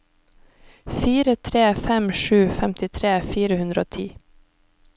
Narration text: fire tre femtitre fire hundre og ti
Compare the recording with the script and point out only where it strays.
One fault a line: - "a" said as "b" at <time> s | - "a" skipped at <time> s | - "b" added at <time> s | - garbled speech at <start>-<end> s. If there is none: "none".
- "fem sju" added at 1.8 s